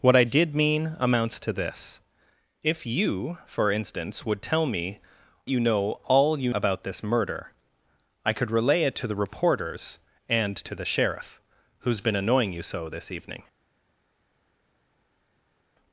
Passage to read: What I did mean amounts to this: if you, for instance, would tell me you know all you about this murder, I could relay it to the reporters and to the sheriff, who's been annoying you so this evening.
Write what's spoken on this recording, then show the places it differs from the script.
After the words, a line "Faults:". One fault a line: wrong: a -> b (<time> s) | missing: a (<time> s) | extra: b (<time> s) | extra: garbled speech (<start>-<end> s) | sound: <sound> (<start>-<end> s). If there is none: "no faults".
What I did mean amounts to this: if you, for instance, would tell me you know all you about this murder, I could relay it to the reporters and to the sheriff, who's been annoying you so this evening.
Faults:
no faults